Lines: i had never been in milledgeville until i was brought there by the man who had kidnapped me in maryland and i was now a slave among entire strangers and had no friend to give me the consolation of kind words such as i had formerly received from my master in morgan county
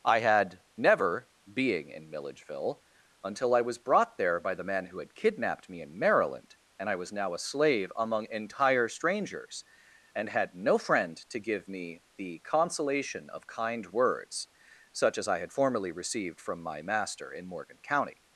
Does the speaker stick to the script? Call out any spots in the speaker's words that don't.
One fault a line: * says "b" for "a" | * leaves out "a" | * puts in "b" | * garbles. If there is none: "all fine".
* says "being" for "been"